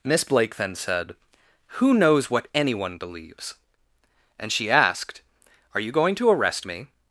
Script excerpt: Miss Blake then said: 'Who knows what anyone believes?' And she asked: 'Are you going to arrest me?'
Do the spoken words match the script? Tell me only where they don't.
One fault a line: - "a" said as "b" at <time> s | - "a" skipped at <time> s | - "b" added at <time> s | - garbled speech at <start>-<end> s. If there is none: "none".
none